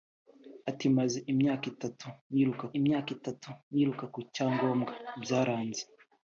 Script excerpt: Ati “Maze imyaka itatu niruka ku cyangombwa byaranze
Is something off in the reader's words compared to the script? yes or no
yes